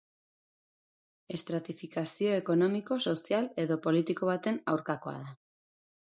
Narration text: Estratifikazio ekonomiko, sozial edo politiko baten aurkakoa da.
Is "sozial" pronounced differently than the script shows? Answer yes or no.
no